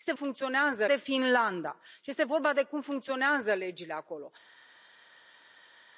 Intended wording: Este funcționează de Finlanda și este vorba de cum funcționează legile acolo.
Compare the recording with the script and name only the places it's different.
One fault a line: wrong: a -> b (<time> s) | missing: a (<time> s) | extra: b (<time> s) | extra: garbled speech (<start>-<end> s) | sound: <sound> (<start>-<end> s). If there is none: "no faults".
no faults